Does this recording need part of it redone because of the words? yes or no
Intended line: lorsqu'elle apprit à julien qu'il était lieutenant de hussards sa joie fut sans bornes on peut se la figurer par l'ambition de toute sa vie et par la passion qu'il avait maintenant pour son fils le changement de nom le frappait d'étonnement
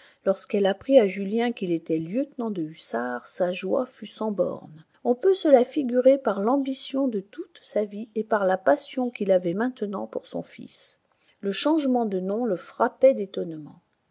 no